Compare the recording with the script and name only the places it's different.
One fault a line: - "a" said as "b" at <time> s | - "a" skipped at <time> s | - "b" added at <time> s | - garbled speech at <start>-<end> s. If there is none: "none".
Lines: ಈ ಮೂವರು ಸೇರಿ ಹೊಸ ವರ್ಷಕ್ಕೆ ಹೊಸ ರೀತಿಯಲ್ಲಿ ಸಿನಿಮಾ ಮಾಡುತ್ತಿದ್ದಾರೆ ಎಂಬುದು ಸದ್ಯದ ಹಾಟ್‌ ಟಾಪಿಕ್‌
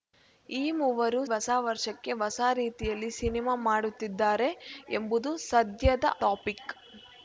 - "ಸೇರಿ" skipped at 1.2 s
- "ಹಾಟ್" skipped at 6.1 s